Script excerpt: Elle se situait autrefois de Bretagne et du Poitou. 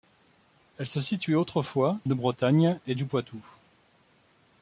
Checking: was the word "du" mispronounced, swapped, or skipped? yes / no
no